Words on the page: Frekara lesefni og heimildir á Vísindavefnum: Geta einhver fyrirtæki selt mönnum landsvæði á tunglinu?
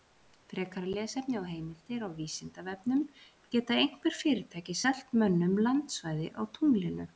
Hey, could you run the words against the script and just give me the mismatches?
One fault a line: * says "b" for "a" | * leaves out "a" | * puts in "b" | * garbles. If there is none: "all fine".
all fine